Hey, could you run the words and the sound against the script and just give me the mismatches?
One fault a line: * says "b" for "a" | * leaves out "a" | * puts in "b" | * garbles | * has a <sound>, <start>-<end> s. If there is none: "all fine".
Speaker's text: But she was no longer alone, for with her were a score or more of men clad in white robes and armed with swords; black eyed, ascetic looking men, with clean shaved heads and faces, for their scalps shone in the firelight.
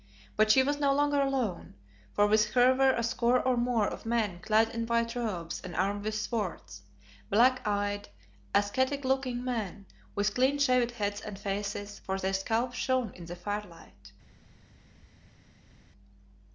all fine